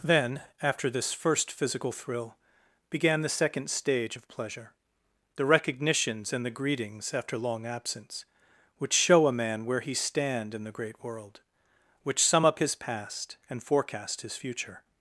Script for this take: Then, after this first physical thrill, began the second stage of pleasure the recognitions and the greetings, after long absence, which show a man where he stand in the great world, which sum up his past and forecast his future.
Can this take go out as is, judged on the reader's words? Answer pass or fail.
pass